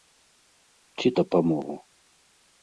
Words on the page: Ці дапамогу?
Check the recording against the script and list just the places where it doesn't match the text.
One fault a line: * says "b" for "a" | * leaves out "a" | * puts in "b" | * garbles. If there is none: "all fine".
all fine